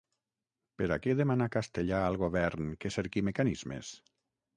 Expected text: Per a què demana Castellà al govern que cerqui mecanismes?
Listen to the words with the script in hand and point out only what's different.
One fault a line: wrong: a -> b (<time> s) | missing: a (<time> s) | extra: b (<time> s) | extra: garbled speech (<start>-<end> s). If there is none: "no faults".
no faults